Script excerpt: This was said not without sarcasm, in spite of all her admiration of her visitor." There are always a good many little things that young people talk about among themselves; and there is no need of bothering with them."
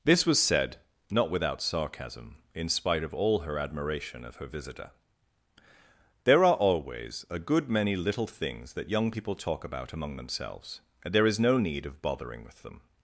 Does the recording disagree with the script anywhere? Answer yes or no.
no